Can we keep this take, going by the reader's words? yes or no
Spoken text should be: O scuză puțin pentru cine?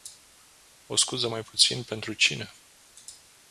no